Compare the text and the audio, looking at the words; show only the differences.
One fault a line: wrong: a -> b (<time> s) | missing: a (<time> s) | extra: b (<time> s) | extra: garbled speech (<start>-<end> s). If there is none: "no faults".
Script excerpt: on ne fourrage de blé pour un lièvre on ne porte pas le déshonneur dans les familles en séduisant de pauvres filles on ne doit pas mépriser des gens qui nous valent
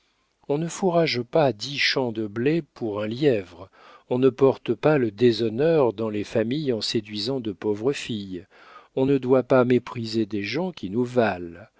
extra: pas dix champs (1.2 s)